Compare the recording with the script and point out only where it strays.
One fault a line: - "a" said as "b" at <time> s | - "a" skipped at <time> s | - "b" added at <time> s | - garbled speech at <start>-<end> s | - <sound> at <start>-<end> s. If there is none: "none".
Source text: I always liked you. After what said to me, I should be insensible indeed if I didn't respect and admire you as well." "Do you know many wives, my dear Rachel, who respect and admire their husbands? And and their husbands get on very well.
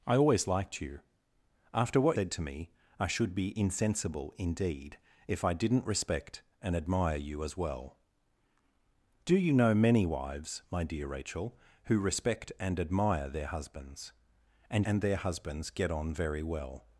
none